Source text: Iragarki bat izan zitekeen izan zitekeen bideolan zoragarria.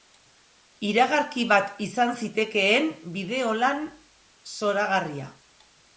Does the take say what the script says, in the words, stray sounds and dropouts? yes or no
no